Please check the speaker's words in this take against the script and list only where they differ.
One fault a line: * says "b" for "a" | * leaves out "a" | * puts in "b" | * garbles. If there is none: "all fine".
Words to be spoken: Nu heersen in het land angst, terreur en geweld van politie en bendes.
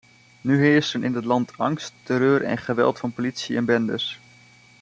all fine